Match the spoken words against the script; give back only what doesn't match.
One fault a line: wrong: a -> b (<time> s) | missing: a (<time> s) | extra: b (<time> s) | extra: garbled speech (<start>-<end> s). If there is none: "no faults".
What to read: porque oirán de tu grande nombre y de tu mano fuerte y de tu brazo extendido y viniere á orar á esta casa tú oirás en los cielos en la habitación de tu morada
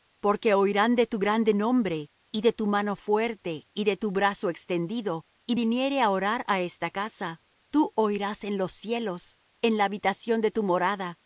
no faults